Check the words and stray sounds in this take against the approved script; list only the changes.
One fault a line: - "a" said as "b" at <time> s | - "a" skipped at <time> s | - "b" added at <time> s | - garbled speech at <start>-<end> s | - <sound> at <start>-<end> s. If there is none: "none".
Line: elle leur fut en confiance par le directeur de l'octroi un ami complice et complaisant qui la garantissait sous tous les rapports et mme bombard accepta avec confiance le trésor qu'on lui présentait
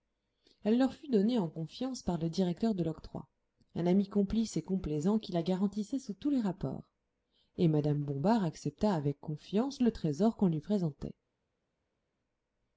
- "donnée" added at 1.1 s